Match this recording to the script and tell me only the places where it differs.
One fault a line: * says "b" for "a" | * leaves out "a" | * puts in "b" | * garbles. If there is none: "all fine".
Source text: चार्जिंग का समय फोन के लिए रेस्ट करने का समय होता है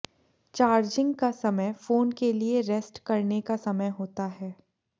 all fine